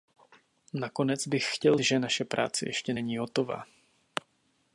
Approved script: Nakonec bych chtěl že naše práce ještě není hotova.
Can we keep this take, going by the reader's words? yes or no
yes